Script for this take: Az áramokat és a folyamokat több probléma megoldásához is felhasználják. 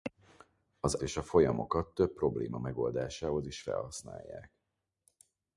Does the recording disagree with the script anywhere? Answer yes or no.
yes